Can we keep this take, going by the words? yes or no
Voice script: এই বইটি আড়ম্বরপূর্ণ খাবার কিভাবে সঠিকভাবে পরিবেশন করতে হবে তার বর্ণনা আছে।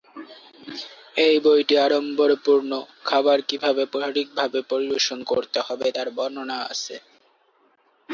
yes